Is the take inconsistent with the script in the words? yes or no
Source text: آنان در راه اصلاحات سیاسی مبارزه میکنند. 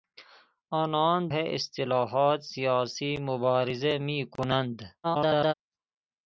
yes